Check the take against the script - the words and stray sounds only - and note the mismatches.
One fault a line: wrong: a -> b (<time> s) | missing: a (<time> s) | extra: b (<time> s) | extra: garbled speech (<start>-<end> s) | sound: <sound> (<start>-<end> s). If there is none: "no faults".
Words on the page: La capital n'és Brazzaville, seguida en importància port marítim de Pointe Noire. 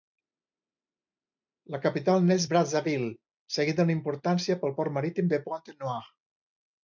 extra: pel (4.6 s)